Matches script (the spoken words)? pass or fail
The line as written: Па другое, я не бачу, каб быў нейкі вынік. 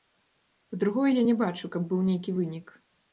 pass